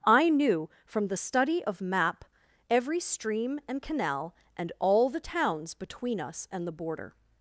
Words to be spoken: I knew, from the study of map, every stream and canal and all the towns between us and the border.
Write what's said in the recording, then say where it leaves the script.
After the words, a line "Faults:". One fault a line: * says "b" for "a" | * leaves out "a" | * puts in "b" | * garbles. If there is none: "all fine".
I knew, from the study of map, every stream and canal and all the towns between us and the border.
Faults:
all fine